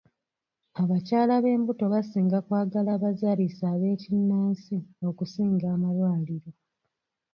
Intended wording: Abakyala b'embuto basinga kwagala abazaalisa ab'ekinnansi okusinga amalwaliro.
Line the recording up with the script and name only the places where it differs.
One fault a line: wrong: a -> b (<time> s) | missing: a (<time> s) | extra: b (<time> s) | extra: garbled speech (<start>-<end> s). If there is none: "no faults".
no faults